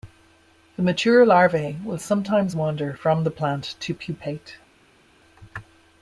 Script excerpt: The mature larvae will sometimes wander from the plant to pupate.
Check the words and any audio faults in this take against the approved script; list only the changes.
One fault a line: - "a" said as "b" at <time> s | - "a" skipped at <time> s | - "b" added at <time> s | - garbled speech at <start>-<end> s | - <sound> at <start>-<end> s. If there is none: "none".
none